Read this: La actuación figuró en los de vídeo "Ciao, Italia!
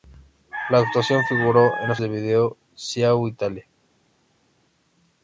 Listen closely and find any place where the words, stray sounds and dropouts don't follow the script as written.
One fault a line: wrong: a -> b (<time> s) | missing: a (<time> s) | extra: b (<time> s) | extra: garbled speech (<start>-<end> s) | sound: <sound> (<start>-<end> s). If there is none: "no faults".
no faults